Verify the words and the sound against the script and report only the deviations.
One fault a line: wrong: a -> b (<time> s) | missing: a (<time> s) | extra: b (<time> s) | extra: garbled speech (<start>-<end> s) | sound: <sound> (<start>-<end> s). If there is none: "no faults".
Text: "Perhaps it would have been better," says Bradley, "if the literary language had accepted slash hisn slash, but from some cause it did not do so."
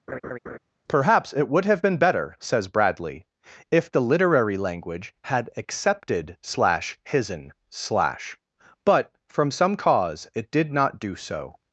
sound: laugh (0.1-0.6 s)